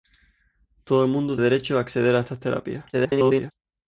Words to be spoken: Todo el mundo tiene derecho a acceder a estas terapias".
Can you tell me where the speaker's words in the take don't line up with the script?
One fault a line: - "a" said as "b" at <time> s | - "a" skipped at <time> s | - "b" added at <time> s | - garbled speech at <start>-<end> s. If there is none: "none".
- "tiene" skipped at 1.4 s
- garbled speech at 2.9-3.5 s